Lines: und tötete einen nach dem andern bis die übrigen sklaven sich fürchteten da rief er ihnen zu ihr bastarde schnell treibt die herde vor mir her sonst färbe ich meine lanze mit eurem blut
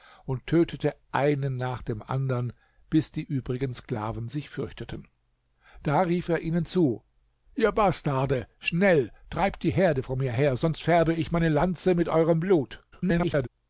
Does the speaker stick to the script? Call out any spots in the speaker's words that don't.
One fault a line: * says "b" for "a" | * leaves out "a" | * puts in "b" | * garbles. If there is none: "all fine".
* garbles